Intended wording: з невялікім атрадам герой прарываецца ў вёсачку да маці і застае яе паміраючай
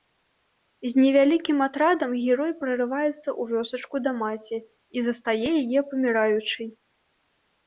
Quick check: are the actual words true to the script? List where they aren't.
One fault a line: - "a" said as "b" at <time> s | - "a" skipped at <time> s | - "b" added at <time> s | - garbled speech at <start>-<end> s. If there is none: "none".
none